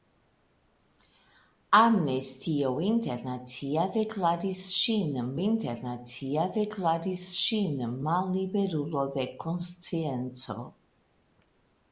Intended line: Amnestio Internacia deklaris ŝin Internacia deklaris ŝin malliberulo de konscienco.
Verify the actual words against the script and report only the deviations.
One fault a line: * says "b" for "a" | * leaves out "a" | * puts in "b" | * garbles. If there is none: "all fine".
all fine